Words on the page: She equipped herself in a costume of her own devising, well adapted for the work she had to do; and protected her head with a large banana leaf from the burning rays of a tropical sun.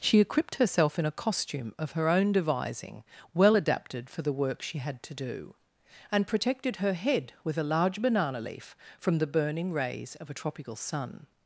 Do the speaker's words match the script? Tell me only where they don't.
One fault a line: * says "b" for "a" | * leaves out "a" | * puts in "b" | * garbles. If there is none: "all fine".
all fine